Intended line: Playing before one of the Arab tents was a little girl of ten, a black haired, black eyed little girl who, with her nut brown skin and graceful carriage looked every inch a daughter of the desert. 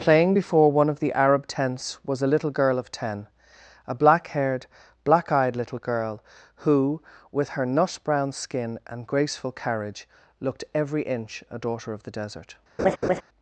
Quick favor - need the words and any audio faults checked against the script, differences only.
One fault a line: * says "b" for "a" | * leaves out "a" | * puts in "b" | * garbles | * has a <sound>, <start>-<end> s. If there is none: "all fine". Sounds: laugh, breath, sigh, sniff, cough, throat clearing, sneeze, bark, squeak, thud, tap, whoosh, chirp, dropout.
* has a laugh, 12.8-13.2 s